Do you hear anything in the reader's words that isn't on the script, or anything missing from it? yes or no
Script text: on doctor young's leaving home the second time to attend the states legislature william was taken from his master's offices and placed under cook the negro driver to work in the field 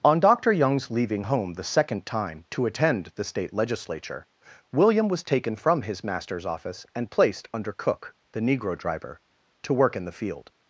yes